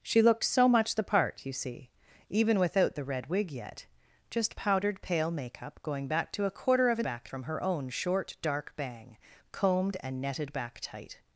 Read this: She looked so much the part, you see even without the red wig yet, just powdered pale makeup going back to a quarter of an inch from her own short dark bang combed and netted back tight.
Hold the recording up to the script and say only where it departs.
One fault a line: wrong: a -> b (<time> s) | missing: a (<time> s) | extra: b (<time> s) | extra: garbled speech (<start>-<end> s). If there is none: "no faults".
wrong: inch -> back (7.0 s)